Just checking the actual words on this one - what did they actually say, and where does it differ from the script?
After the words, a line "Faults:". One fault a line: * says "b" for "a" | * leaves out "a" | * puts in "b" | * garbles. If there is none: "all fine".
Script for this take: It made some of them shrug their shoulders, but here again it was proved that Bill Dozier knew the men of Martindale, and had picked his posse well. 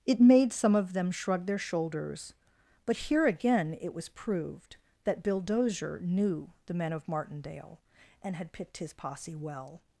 It made some of them shrug their shoulders, but here again it was proved that Bill Dozier knew the men of Martindale, and had picked his posse well.
Faults:
all fine